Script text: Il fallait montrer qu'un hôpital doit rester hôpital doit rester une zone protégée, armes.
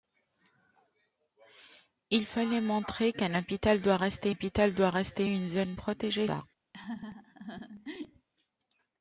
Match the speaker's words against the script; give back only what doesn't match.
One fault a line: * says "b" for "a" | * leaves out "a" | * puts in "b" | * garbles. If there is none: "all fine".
all fine